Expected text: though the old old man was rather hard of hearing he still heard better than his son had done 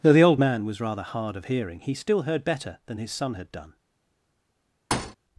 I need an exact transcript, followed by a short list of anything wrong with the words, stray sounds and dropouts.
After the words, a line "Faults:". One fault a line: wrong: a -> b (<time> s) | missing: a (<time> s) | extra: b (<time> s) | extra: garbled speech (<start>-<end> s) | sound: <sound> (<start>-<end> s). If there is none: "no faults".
though the old man was rather hard of hearing he still heard better than his son had done
Faults:
missing: old (0.4 s)
sound: thud (4.9-5.2 s)